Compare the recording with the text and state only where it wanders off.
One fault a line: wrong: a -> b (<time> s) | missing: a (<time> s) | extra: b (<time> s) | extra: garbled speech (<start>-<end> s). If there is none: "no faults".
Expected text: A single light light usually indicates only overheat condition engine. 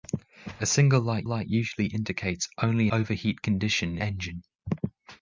no faults